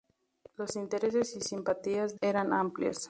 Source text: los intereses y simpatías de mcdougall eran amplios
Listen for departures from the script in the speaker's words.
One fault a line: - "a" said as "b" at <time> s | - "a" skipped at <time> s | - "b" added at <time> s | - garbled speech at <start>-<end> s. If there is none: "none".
- "de mcdougall" skipped at 2.2 s